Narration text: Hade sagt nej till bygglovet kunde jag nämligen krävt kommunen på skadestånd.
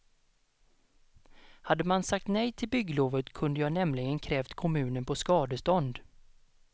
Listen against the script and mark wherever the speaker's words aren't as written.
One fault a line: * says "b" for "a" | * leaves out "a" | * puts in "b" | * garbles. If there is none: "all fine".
* puts in "man"